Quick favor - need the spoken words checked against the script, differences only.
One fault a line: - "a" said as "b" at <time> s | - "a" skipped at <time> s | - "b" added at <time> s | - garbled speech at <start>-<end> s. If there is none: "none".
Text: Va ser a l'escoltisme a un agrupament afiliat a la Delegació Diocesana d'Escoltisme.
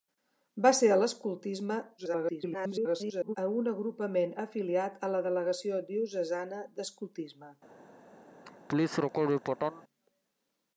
- garbled speech at 2.0-3.4 s